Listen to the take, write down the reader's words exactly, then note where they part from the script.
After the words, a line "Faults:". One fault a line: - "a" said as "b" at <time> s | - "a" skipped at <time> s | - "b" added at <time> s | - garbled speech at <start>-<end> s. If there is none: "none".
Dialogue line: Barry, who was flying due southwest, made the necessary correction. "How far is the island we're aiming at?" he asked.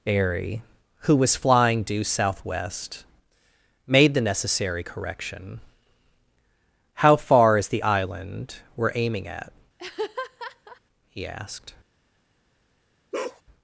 Airy, who was flying due southwest, made the necessary correction. "How far is the island we're aiming at?" he asked.
Faults:
- "Barry" said as "Airy" at 0.1 s